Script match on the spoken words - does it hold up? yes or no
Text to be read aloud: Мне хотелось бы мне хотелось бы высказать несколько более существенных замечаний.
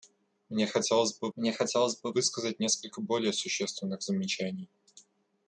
yes